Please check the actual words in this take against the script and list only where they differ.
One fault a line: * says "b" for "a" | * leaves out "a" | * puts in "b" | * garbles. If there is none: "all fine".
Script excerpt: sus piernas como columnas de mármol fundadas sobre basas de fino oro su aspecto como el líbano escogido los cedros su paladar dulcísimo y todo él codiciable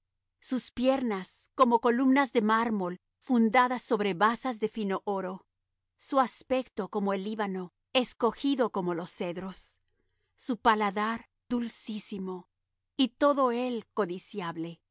* puts in "como"